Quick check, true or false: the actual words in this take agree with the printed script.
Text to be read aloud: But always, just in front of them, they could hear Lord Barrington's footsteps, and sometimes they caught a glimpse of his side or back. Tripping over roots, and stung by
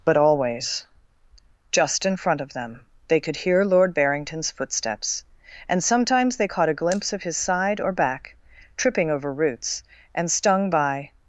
true